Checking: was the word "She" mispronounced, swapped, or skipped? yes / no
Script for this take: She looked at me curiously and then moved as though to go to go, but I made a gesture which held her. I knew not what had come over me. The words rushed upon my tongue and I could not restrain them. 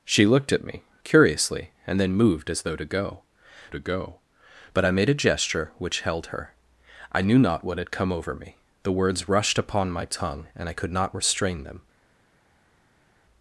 no